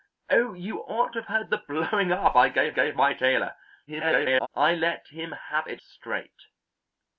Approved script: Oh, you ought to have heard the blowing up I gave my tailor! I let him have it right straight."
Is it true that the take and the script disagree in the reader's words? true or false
true